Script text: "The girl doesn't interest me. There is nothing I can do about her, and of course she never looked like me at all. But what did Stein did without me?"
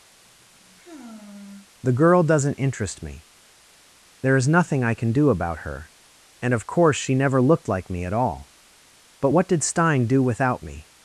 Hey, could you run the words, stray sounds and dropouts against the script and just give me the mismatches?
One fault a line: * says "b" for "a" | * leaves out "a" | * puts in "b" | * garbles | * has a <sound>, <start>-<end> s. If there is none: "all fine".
* has a sigh, 0.1-1.7 s
* says "do" for "did"